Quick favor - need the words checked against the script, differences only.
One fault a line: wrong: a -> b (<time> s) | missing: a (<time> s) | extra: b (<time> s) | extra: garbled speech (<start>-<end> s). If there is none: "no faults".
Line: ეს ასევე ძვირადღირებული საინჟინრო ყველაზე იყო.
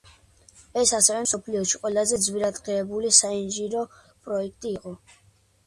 extra: მსოფლიოში ყველაზე (1.2 s)
wrong: ყველაზე -> პროექტი (4.0 s)